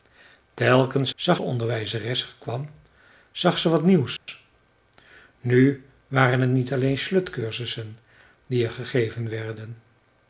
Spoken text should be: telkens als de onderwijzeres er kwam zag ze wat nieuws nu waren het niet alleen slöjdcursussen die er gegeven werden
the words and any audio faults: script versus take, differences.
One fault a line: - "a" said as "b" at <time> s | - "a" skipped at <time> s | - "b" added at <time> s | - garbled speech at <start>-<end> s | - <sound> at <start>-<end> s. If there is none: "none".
- "als" said as "zag" at 1.1 s
- dropout at 4.2-4.3 s